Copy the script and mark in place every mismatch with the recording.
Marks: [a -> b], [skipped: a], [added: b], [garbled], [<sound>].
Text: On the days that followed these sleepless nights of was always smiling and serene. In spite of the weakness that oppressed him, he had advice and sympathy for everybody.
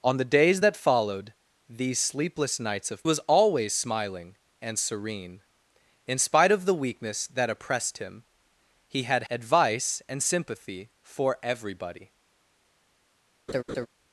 On the days that followed these sleepless nights of was always smiling and serene. In spite of the weakness that oppressed him, he had advice and sympathy for everybody. [laugh]